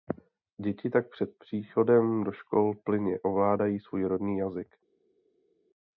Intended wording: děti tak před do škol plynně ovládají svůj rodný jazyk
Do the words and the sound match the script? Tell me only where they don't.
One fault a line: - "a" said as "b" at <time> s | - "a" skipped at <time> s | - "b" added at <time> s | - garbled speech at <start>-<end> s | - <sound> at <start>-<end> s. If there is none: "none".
- "příchodem" added at 1.4 s